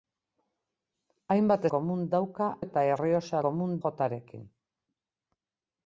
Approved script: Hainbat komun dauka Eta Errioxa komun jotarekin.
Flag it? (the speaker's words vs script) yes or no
no